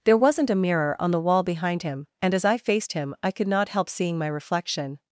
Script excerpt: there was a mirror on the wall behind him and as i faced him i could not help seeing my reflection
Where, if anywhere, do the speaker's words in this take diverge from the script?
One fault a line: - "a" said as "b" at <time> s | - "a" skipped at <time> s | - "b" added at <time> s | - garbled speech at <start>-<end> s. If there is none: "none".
- "was" said as "wasn't" at 0.2 s